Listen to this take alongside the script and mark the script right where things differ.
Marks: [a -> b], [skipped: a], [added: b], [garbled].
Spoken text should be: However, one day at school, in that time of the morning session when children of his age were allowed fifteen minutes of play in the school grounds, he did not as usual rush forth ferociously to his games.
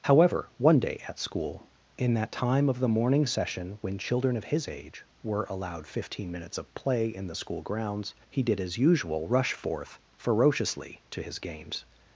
However, one day at school, in that time of the morning session when children of his age were allowed fifteen minutes of play in the school grounds, he did [skipped: not] as usual rush forth ferociously to his games.